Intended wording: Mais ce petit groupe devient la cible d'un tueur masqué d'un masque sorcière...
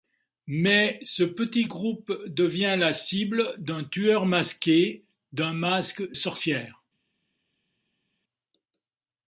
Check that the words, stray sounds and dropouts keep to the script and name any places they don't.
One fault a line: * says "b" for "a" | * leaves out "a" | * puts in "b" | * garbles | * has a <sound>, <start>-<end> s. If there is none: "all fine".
all fine